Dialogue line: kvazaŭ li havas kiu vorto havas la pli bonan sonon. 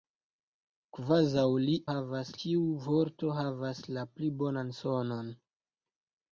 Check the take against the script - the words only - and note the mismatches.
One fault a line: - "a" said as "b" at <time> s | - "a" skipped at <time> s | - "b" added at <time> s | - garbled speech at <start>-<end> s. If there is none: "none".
none